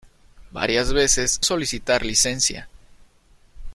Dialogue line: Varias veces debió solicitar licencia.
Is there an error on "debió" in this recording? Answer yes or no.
yes